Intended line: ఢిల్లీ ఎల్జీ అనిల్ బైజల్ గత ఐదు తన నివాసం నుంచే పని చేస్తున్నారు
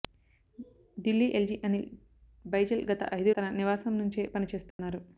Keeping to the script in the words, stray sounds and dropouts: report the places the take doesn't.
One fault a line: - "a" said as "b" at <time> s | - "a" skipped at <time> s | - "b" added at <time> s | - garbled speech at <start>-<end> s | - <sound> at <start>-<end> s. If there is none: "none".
- dropout at 4.7-4.8 s